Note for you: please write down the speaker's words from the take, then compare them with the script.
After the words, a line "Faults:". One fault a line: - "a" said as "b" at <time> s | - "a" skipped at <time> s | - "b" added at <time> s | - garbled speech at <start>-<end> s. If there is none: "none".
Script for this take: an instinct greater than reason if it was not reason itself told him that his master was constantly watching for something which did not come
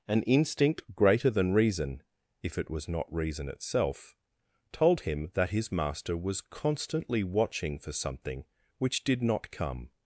an instinct greater than reason if it was not reason itself told him that his master was constantly watching for something which did not come
Faults:
none